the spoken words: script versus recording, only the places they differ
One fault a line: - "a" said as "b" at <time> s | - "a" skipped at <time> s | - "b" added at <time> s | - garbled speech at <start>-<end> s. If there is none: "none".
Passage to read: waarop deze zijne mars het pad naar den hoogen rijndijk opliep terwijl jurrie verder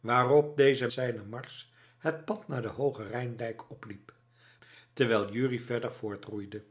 none